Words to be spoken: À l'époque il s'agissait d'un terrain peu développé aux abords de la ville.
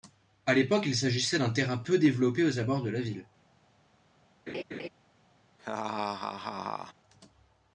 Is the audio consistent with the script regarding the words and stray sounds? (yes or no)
no